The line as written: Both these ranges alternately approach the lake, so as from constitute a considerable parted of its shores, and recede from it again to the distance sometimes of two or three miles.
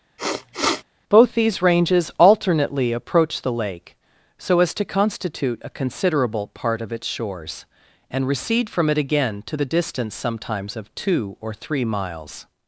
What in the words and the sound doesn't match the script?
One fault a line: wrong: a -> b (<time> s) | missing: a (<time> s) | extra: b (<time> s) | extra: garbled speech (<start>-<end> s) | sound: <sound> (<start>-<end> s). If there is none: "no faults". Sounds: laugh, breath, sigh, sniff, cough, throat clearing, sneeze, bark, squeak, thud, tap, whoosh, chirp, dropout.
sound: sniff (0.2-0.8 s)
wrong: from -> to (4.7 s)
wrong: parted -> part (6.5 s)